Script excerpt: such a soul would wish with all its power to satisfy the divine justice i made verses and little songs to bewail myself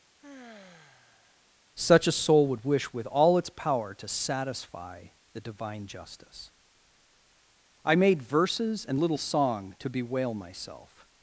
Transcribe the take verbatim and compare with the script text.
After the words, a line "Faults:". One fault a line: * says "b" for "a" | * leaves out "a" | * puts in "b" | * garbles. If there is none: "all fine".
such a soul would wish with all its power to satisfy the divine justice i made verses and little song to bewail myself
Faults:
* says "song" for "songs"